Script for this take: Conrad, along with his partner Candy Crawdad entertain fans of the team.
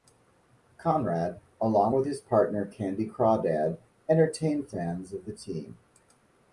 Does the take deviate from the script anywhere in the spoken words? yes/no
no